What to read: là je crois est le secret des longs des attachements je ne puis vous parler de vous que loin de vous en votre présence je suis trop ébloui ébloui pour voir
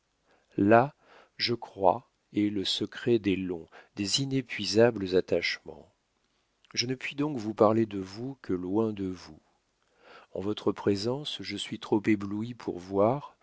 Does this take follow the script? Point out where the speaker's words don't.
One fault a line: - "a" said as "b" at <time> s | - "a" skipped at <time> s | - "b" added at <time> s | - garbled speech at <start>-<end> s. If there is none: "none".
- "inépuisables" added at 4.2 s
- "donc" added at 7.1 s
- "ébloui" skipped at 12.5 s